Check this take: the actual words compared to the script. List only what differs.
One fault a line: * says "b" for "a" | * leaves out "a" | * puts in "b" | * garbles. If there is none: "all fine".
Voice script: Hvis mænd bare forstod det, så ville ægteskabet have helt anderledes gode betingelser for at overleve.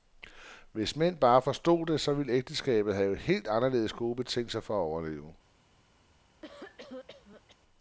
all fine